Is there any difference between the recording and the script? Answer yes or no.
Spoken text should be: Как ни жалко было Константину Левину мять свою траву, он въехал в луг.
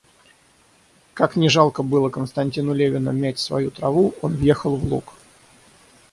no